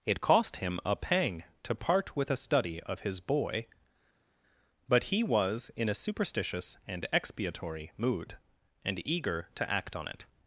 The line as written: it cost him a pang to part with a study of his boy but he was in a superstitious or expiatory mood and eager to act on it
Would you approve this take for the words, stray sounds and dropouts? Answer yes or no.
no